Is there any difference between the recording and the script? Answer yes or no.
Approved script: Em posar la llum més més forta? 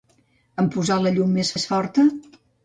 no